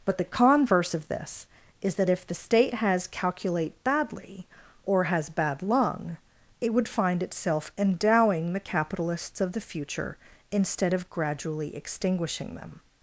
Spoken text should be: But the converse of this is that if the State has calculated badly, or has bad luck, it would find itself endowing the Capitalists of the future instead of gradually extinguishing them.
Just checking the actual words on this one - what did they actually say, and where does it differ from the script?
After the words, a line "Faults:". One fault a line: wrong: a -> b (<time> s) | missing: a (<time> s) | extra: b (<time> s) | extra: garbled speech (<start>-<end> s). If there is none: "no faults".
But the converse of this is that if the State has calculate badly, or has bad lung, it would find itself endowing the Capitalists of the future instead of gradually extinguishing them.
Faults:
wrong: calculated -> calculate (3.1 s)
wrong: luck -> lung (5.6 s)